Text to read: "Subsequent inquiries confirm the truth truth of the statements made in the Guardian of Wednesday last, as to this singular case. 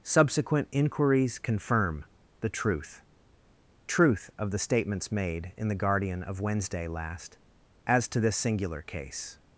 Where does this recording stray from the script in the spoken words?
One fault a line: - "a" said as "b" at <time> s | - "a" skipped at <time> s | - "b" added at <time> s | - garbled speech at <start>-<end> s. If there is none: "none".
none